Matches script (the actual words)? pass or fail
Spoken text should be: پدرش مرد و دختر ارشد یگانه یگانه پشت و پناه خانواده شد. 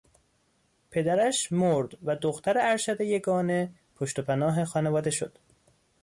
fail